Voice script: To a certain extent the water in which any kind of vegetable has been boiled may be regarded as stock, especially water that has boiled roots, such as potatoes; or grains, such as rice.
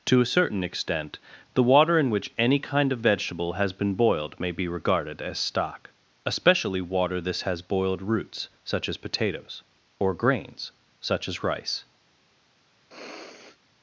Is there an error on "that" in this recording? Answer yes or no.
yes